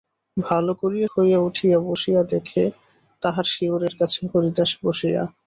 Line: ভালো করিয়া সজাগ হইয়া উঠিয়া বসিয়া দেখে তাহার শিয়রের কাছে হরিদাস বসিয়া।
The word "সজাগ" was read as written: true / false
false